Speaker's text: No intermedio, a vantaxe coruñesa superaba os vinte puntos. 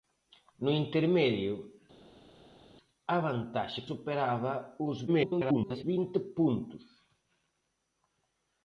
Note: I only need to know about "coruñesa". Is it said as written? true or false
false